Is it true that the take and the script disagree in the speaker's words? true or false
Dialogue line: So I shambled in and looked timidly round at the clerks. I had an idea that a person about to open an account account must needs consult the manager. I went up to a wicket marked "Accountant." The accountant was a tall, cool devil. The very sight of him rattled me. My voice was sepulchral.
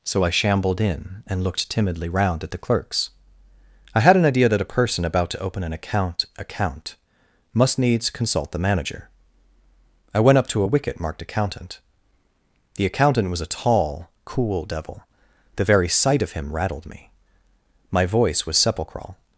false